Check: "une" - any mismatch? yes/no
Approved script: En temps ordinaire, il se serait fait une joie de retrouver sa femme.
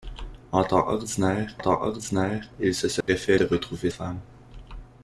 yes